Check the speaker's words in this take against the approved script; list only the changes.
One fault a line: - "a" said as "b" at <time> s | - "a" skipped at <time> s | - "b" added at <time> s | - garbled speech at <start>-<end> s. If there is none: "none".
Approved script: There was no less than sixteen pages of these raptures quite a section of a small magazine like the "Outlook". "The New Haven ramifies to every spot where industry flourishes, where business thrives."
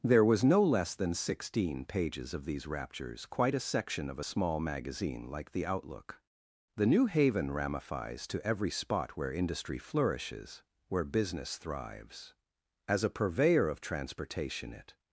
- "As a purveyor of transportation it" added at 12.9 s